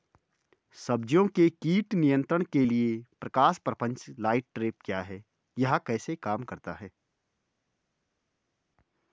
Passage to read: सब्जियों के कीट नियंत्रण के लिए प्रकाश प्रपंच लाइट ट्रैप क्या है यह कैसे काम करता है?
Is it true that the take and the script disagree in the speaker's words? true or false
false